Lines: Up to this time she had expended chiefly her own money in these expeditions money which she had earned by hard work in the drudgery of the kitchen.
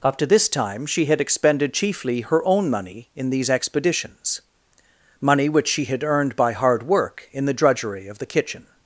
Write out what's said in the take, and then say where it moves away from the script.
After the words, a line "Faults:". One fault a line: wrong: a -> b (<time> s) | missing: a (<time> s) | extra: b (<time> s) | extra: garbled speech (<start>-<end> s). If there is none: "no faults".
Up to this time she had expended chiefly her own money in these expeditions money which she had earned by hard work in the drudgery of the kitchen.
Faults:
no faults